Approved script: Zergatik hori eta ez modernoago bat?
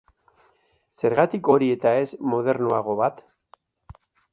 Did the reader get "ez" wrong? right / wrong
right